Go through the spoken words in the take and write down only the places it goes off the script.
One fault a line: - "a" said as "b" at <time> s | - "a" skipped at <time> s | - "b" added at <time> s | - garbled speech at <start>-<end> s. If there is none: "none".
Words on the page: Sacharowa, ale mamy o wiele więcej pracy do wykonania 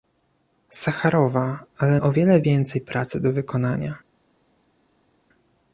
- "mamy" skipped at 2.0 s